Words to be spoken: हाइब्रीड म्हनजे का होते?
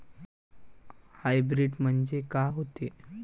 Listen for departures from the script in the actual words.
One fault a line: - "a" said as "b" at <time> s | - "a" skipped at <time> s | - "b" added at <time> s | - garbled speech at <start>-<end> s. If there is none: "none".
none